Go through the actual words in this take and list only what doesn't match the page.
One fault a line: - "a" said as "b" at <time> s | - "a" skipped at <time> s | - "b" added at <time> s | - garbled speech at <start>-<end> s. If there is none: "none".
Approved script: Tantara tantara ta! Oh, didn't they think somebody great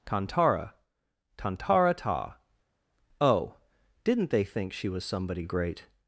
- "she was" added at 4.7 s